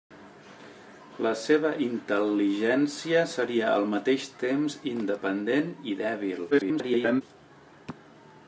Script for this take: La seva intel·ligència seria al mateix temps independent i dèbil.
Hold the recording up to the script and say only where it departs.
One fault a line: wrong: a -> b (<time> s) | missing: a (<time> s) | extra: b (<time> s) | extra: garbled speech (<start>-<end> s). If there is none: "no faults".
extra: garbled speech (6.5-7.2 s)